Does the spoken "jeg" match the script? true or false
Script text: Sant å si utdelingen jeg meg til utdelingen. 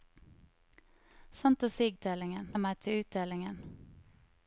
true